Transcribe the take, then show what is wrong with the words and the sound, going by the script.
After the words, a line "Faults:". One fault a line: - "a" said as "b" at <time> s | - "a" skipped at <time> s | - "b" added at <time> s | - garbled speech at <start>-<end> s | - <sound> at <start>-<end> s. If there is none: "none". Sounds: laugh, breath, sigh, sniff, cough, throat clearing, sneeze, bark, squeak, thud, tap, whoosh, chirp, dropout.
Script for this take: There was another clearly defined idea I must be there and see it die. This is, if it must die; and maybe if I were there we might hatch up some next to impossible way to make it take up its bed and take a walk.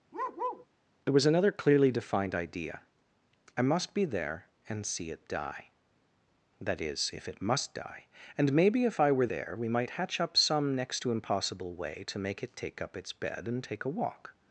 There was another clearly defined idea I must be there and see it die. That is, if it must die; and maybe if I were there we might hatch up some next to impossible way to make it take up its bed and take a walk.
Faults:
- bark at 0.1-0.7 s
- "This" said as "That" at 6.6 s